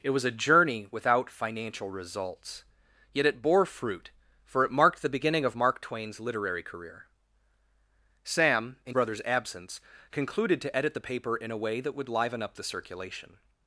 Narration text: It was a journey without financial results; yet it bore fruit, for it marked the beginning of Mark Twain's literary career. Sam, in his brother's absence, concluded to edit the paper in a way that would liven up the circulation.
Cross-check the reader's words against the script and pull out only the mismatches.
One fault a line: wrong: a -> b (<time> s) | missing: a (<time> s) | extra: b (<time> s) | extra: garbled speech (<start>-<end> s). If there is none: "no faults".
missing: his (9.0 s)